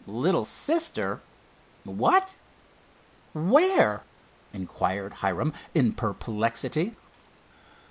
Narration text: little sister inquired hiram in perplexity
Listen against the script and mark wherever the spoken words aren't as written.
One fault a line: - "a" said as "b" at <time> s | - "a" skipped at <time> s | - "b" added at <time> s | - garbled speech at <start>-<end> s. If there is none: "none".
- "what where" added at 1.8 s